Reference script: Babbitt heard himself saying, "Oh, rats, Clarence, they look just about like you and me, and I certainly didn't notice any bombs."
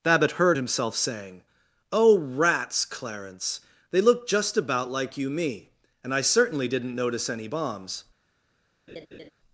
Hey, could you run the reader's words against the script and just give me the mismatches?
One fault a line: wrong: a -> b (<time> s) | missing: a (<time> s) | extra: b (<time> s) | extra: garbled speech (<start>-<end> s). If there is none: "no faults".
missing: and (5.3 s)